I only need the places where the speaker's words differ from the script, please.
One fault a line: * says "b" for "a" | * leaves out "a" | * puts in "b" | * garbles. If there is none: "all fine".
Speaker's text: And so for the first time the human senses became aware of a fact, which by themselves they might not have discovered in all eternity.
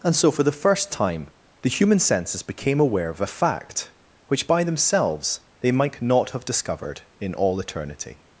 all fine